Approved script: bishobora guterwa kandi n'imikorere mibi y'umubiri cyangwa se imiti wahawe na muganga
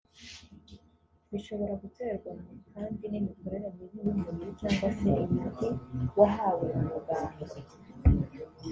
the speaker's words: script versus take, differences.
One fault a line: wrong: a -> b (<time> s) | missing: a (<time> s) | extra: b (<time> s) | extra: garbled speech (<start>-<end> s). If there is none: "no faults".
no faults